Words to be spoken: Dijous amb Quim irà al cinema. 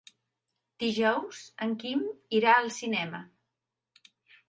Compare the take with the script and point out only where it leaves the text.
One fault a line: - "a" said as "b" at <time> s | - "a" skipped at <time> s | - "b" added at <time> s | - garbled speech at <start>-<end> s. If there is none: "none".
- "amb" said as "en" at 1.7 s